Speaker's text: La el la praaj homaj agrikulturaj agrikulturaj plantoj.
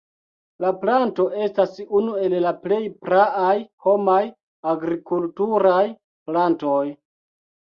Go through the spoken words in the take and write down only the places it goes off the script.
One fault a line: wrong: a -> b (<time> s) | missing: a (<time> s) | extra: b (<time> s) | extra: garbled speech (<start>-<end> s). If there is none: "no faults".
extra: planto estas unu (0.8 s)
extra: plej (2.6 s)
missing: agrikulturaj (5.8 s)